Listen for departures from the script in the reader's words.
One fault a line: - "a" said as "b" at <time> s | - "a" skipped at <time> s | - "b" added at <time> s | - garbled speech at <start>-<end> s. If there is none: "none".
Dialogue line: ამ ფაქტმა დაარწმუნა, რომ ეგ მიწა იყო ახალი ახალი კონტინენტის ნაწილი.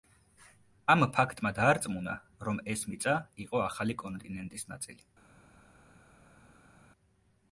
- "ეგ" said as "ეს" at 2.8 s
- "ახალი" skipped at 4.0 s